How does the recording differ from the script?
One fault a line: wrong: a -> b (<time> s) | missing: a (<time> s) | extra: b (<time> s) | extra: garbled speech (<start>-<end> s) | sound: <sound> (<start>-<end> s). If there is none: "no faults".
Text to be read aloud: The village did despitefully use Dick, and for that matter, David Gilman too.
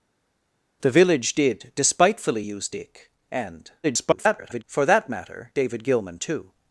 extra: garbled speech (3.8-4.6 s)